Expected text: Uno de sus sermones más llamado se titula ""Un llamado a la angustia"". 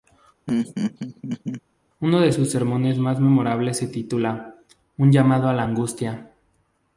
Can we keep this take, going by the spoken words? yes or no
no